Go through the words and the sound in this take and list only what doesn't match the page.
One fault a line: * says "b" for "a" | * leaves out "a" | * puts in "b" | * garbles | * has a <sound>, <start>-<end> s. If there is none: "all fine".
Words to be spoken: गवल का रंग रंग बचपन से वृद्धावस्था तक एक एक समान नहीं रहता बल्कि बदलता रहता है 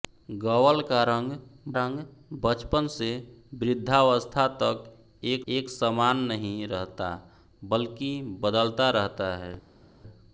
all fine